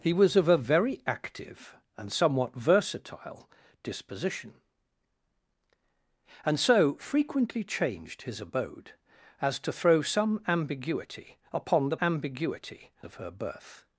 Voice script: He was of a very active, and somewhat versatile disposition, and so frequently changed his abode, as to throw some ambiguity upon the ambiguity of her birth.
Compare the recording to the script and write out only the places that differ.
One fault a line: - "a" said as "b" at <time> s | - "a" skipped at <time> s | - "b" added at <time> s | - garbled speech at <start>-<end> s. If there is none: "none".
none